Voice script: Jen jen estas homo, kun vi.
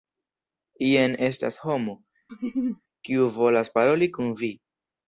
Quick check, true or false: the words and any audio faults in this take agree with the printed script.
false